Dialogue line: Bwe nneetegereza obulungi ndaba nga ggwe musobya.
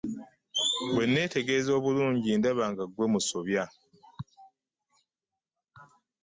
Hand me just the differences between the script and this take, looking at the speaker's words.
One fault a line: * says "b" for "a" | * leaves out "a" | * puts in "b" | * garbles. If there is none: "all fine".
all fine